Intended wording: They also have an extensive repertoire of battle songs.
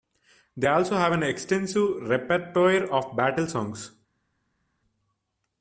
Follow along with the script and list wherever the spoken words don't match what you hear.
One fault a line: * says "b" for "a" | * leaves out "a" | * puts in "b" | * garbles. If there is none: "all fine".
all fine